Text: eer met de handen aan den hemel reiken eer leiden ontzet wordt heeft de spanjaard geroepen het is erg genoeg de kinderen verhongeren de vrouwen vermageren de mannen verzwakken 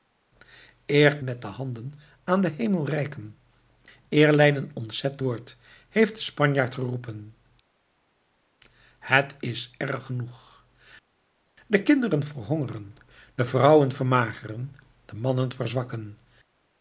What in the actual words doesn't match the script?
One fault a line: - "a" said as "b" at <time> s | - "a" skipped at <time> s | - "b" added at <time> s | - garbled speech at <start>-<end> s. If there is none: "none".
none